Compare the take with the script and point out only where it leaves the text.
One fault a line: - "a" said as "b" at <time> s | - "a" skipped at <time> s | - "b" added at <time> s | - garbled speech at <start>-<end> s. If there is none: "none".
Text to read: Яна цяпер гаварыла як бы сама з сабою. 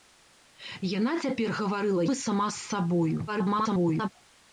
- "як" skipped at 2.0 s
- garbled speech at 3.3-4.1 s